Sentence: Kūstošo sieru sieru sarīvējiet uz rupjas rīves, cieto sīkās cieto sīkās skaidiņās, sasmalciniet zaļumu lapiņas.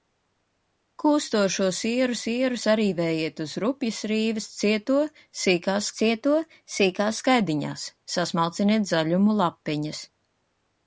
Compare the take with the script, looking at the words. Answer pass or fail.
pass